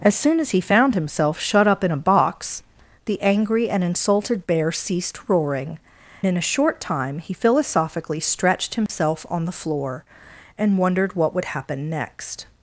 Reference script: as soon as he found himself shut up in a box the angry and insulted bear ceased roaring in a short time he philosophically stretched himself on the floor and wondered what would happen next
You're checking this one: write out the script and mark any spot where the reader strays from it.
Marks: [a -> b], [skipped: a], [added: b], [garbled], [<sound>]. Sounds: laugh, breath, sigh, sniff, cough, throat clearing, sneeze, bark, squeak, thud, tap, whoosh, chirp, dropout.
as soon as he found himself shut up in a box the angry and insulted bear ceased roaring in a short time he philosophically stretched himself [dropout] on the floor and wondered what would happen next